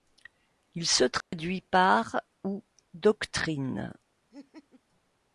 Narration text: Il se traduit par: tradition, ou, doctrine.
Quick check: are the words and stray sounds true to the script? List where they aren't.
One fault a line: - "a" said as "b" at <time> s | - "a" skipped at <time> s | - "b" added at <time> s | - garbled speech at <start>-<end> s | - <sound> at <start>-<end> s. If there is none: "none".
- dropout at 1.2-1.3 s
- "tradition" skipped at 2.2 s
- laugh at 4.3-4.8 s